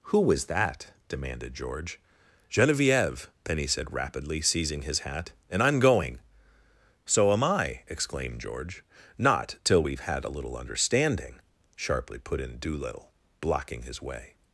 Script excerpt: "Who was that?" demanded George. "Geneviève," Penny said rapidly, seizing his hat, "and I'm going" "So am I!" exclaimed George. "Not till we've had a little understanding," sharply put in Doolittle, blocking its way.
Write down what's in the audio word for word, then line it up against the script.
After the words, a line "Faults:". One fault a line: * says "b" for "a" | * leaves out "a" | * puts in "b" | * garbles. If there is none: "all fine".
"Who was that?" demanded George. "Geneviève," Penny said rapidly, seizing his hat, "and I'm going" "So am I!" exclaimed George. "Not till we've had a little understanding," sharply put in Doolittle, blocking his way.
Faults:
* says "his" for "its"